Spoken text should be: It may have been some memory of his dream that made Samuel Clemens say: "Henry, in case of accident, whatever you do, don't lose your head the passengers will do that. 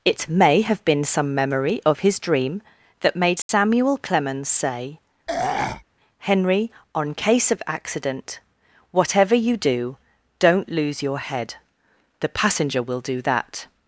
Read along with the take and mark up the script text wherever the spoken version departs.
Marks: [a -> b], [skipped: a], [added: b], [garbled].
It may have been some memory of his dream that made Samuel Clemens say: "Henry, [in -> on] case of accident, whatever you do, don't lose your head the [passengers -> passenger] will do that.